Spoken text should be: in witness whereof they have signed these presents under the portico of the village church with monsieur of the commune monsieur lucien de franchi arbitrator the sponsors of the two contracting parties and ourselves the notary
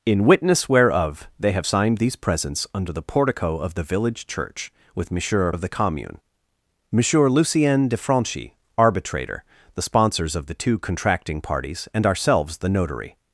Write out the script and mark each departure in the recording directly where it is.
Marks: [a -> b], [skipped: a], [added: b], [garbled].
in witness whereof they have signed these presents under the portico of the village church with monsieur of the commune monsieur lucien de franchi arbitrator the sponsors of the two contracting parties and ourselves the notary